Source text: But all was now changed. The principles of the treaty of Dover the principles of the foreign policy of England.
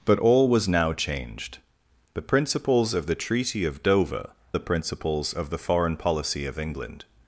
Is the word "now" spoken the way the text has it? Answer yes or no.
yes